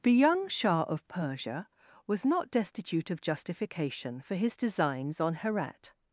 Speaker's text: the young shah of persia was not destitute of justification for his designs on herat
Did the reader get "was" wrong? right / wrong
right